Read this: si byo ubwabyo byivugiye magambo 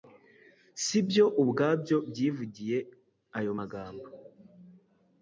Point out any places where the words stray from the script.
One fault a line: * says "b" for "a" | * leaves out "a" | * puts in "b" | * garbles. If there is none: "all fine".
* puts in "ayo"